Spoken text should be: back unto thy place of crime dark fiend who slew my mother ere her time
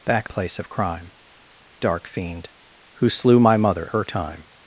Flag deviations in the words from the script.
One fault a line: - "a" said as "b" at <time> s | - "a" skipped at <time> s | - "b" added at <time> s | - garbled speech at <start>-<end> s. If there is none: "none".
- "unto thy" skipped at 0.3 s
- "ere" skipped at 3.9 s